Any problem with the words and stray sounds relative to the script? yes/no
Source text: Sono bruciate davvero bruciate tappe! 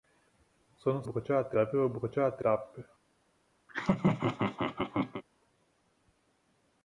yes